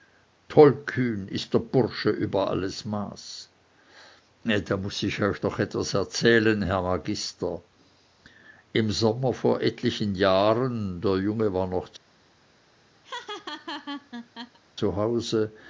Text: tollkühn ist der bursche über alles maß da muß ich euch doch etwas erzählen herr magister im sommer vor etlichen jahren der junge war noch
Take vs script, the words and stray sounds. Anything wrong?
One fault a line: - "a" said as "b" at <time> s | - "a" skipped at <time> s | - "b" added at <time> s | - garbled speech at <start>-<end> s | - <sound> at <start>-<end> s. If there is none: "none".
- laugh at 13.0-14.6 s